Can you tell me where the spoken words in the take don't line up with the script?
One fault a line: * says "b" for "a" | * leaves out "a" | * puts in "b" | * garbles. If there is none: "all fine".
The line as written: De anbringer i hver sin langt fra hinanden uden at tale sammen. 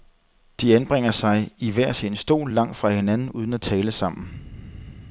* puts in "sig"
* puts in "stol"